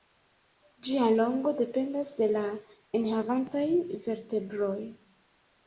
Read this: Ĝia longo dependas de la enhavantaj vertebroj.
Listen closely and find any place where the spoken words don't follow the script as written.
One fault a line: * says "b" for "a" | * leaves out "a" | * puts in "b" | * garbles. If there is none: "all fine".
all fine